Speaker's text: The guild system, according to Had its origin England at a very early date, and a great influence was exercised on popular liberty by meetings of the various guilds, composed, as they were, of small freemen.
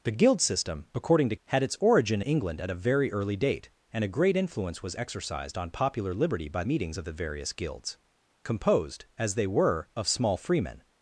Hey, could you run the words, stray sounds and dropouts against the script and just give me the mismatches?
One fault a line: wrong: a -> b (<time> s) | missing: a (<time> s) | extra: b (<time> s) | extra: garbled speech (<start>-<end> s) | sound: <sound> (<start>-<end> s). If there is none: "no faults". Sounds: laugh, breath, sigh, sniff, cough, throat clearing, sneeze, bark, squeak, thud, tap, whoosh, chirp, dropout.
no faults